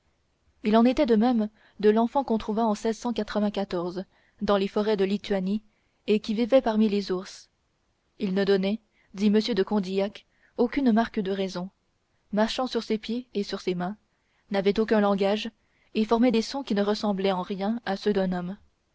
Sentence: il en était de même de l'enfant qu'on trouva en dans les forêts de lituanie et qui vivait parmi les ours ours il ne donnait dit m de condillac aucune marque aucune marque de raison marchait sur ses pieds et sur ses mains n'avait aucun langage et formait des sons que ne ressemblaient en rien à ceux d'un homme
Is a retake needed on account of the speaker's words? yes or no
yes